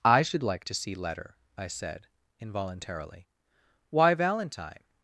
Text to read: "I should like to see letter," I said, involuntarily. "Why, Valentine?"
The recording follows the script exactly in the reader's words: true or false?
true